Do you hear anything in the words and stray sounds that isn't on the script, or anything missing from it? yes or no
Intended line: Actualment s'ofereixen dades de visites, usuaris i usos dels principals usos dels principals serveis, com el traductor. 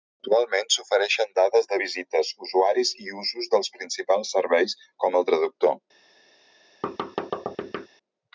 yes